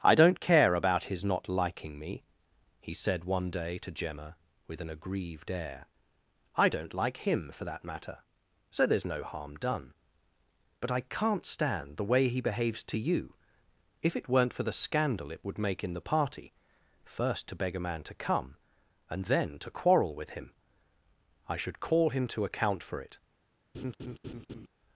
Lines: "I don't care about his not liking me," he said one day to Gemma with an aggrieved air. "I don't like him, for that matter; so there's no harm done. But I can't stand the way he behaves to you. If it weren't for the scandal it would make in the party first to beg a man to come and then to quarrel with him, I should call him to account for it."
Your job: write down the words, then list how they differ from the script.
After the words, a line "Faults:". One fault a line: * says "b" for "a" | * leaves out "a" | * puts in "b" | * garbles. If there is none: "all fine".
"I don't care about his not liking me," he said one day to Gemma with an aggrieved air. "I don't like him, for that matter; so there's no harm done. But I can't stand the way he behaves to you. If it weren't for the scandal it would make in the party first to beg a man to come and then to quarrel with him, I should call him to account for it."
Faults:
all fine